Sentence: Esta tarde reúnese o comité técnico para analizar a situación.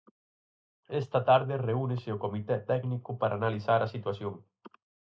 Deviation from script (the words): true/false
false